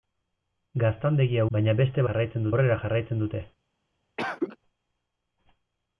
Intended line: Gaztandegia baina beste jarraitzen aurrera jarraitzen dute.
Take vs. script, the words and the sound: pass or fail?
fail